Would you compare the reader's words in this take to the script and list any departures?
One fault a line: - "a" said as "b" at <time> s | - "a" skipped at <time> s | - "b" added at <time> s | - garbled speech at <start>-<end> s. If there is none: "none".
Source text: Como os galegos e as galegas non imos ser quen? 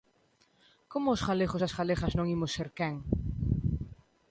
none